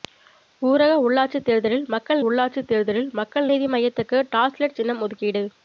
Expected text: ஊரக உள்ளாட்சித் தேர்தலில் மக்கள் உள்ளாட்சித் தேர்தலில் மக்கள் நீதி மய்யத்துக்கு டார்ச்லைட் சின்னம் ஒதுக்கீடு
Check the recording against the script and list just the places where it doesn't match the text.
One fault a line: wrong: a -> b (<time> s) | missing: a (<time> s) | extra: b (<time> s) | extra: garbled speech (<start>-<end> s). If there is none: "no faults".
no faults